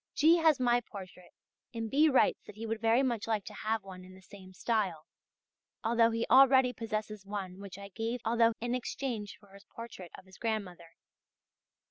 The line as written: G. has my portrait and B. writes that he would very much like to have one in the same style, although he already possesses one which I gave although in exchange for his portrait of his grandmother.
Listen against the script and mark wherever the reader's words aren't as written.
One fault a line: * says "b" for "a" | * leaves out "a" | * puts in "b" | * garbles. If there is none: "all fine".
all fine